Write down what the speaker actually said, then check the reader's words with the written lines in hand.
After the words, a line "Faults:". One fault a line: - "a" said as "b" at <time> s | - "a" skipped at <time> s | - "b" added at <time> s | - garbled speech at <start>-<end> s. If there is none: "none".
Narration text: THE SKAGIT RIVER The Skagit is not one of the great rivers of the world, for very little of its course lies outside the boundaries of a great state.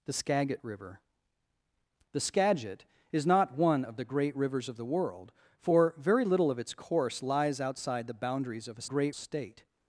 THE SKAGIT RIVER The Skagit is not one of the great rivers of the world, for very little of its course lies outside the boundaries of a great state.
Faults:
none